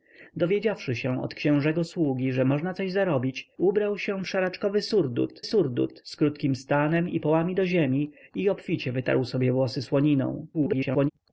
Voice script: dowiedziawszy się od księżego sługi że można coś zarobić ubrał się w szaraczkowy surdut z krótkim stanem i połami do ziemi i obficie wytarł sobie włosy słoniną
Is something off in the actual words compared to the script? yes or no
yes